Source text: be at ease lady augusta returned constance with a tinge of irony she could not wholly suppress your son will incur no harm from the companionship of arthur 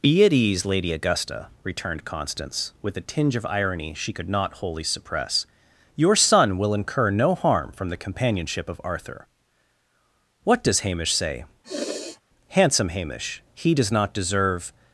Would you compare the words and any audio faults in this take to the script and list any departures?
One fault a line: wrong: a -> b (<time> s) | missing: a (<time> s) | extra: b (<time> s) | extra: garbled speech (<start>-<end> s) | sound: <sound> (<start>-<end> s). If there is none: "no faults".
extra: what does hamish say handsome hamish he does not deserve (10.4 s)
sound: sniff (11.6-12.2 s)